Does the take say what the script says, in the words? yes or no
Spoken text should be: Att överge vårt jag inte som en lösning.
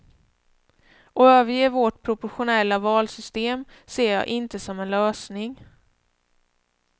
no